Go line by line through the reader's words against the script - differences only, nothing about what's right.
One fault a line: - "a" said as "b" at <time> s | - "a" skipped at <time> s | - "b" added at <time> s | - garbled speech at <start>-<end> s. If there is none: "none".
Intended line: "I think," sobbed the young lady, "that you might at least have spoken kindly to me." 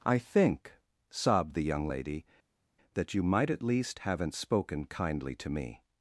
- "have" said as "haven't" at 4.0 s